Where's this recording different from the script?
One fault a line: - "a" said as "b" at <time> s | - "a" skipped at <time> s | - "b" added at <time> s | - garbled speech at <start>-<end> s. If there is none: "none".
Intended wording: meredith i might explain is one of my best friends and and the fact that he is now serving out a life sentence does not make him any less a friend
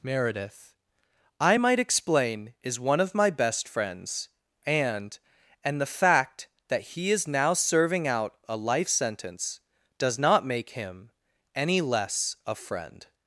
none